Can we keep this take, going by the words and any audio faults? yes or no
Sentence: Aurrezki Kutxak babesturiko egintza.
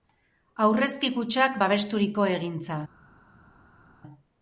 yes